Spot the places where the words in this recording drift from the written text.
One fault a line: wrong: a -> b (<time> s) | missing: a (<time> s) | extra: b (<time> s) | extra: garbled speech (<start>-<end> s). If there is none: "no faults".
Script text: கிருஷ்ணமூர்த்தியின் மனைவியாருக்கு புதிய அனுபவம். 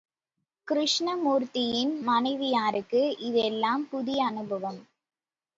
extra: இதெல்லாம் (3.2 s)